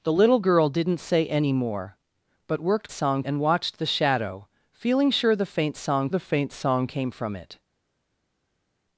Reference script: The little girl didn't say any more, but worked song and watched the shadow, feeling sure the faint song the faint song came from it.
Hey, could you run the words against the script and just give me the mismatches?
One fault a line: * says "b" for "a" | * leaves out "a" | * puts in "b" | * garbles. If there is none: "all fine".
all fine